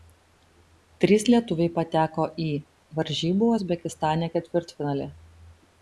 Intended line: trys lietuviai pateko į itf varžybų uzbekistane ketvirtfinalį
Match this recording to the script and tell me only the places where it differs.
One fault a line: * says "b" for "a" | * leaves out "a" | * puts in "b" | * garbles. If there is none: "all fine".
* leaves out "itf"